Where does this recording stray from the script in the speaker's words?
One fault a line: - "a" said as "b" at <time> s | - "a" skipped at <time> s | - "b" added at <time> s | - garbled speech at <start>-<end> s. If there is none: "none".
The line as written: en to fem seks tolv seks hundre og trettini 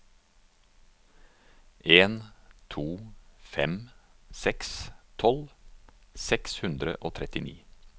none